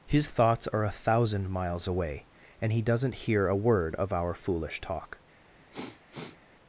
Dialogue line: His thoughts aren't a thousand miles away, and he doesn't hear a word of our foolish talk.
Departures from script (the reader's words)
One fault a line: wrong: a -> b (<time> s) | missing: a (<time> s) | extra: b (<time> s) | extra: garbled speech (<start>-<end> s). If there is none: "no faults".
wrong: aren't -> are (0.7 s)